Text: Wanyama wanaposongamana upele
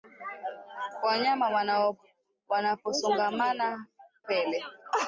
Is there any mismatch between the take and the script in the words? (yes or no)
no